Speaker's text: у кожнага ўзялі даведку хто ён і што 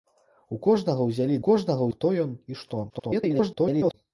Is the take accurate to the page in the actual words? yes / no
no